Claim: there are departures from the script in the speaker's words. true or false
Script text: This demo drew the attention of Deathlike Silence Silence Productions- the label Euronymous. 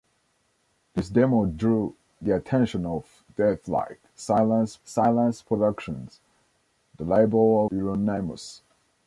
false